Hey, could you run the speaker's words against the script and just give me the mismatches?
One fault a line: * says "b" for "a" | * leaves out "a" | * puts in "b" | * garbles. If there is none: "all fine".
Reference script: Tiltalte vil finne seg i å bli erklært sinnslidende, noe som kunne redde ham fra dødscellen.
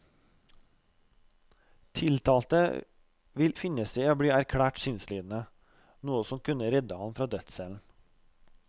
all fine